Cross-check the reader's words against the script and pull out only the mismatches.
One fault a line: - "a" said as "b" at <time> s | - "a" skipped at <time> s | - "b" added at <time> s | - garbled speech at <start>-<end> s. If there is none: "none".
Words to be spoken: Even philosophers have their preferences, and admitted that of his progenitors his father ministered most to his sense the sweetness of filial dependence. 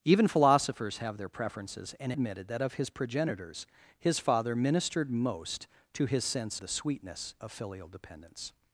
none